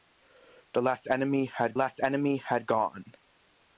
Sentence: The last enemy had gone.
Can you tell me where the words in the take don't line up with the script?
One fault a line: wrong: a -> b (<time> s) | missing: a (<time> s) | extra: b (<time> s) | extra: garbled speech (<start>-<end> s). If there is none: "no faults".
extra: last enemy had (1.7 s)